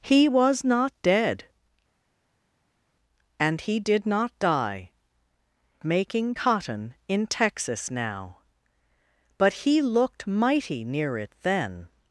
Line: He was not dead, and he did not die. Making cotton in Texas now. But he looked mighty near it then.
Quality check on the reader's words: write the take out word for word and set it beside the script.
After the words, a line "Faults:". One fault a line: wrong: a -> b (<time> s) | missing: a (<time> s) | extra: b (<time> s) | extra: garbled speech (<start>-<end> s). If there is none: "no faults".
He was not dead, and he did not die. Making cotton in Texas now. But he looked mighty near it then.
Faults:
no faults